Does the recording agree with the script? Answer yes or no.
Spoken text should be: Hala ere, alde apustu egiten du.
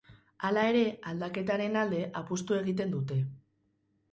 no